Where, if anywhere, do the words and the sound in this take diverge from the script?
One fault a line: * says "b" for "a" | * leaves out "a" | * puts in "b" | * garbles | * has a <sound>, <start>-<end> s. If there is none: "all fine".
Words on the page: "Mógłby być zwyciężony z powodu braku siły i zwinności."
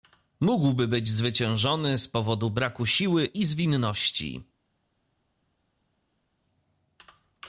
all fine